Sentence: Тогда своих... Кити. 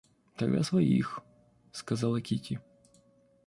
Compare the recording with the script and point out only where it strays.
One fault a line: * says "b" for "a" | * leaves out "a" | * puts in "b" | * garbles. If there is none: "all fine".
* puts in "сказала"